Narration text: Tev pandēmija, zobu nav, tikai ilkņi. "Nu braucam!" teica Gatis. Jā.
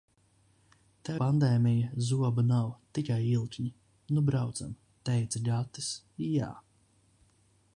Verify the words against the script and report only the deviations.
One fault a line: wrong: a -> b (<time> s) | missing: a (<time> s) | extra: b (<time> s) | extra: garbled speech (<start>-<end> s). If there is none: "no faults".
no faults